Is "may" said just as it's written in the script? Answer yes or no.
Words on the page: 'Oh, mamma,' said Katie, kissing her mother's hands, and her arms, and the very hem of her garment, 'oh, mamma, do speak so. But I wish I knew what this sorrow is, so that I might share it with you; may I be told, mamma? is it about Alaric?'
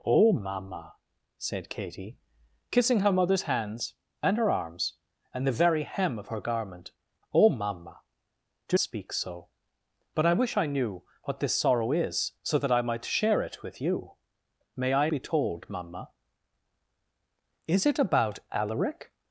yes